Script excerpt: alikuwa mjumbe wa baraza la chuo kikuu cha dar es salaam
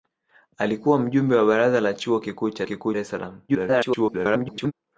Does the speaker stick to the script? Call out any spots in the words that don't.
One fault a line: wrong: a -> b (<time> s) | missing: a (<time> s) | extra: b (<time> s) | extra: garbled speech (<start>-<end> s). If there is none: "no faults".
wrong: dar -> kikuu (2.6 s)
extra: garbled speech (3.5-4.7 s)